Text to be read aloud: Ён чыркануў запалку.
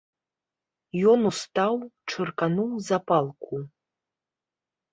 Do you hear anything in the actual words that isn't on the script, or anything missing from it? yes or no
yes